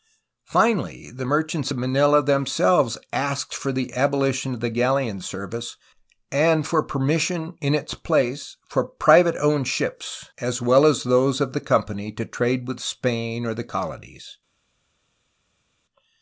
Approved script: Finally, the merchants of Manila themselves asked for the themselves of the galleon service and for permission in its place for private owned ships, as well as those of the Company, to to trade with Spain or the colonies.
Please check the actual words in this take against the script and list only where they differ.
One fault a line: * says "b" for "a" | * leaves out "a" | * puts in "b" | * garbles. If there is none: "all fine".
* says "abolition" for "themselves"
* leaves out "to"